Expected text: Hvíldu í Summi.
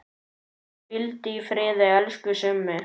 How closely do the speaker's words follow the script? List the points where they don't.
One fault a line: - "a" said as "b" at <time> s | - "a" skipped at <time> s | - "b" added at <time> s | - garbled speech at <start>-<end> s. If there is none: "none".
- "friði elsku" added at 1.5 s